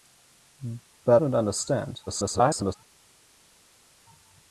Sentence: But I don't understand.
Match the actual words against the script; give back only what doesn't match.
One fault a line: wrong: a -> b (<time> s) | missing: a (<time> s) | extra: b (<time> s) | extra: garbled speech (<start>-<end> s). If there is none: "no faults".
missing: I (1.2 s)
extra: garbled speech (2.1-2.8 s)